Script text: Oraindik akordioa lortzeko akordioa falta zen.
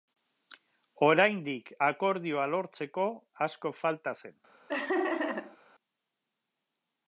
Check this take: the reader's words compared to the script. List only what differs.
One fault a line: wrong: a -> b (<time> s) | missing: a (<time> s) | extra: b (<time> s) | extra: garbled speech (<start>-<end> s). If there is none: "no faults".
wrong: akordioa -> asko (3.5 s)